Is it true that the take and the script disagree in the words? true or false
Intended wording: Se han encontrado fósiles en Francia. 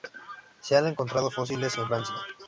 false